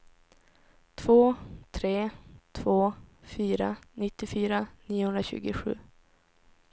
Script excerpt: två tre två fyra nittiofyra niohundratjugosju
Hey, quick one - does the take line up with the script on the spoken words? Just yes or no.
yes